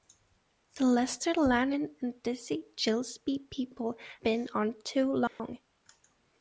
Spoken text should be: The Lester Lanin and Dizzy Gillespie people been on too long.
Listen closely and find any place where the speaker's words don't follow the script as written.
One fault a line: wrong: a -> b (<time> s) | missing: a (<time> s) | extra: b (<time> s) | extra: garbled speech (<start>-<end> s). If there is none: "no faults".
no faults